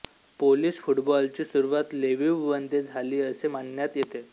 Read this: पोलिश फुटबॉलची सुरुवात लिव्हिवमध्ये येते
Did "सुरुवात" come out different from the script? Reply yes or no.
no